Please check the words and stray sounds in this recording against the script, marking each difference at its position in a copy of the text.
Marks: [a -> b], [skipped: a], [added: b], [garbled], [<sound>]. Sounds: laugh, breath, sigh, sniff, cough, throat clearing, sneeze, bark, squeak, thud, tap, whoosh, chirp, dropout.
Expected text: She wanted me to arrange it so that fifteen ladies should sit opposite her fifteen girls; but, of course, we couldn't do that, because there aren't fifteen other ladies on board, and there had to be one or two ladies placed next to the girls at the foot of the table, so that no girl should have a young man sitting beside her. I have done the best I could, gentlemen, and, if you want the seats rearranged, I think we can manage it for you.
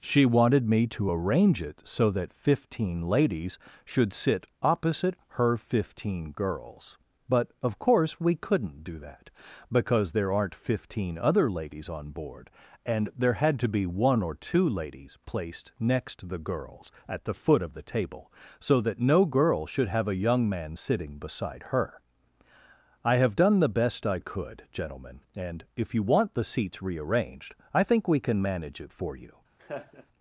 She wanted me to arrange it so that fifteen ladies should sit opposite her fifteen girls; but, of course, we couldn't do that, because there aren't fifteen other ladies on board, and there had to be one or two ladies placed next to the girls at the foot of the table, so that no girl should have a young man sitting beside her. I have done the best I could, gentlemen, and, if you want the seats rearranged, I think we can manage it for you. [laugh]